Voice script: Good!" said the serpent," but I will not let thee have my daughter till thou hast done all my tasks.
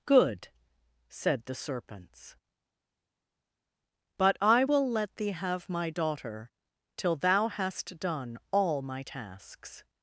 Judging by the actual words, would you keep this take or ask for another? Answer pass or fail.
fail